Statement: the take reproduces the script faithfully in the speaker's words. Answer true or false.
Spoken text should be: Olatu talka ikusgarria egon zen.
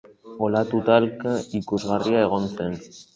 true